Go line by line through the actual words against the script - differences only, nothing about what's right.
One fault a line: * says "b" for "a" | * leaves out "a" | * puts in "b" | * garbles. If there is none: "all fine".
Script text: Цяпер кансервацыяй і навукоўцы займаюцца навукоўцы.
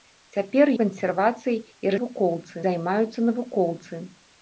all fine